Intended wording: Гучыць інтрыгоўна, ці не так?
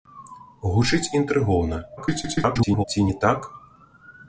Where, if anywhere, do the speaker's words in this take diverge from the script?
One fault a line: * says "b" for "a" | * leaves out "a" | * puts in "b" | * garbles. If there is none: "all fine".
* garbles